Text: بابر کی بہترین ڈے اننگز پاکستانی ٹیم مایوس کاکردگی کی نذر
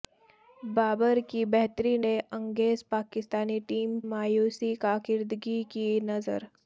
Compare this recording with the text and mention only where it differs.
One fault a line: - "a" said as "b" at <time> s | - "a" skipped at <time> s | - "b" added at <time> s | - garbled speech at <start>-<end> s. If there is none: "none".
none